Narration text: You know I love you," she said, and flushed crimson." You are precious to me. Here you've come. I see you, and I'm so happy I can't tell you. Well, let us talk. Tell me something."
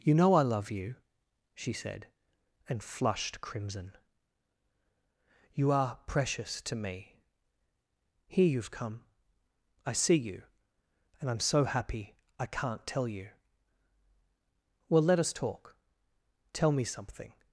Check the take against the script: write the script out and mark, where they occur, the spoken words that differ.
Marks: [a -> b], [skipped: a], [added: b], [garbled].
You know I love you," she said, and flushed crimson." You are precious to me. Here you've come. I see you, and I'm so happy I can't tell you. Well, let us talk. Tell me something."